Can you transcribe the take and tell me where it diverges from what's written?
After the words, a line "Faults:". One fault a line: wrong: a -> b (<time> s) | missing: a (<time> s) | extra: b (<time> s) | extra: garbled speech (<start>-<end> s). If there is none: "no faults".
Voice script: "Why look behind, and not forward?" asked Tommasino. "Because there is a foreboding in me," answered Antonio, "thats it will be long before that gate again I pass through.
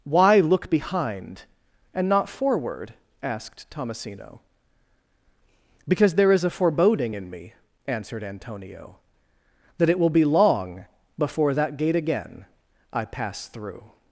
"Why look behind, and not forward?" asked Tommasino. "Because there is a foreboding in me," answered Antonio, "that it will be long before that gate again I pass through.
Faults:
wrong: thats -> that (9.8 s)